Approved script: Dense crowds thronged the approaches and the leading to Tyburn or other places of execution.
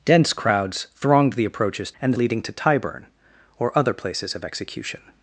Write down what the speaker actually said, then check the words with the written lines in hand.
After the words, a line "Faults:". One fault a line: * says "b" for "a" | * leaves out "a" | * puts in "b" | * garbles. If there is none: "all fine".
Dense crowds thronged the approaches and the leading to Tyburn or other places of execution.
Faults:
all fine